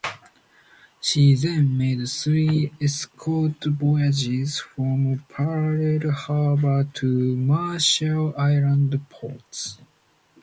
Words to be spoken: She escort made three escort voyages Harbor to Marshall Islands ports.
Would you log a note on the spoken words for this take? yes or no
yes